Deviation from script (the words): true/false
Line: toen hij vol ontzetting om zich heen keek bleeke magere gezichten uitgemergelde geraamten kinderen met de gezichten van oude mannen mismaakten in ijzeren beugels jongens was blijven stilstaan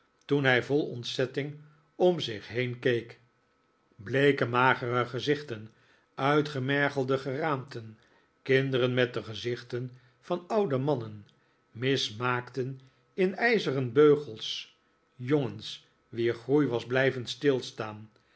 true